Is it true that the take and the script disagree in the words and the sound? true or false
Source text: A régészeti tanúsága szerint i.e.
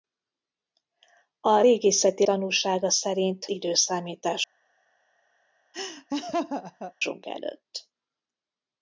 true